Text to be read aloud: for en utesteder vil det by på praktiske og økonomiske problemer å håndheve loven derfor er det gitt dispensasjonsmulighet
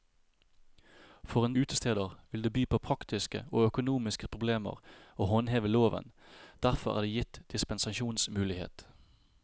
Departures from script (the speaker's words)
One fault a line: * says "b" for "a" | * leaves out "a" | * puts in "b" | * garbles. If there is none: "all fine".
all fine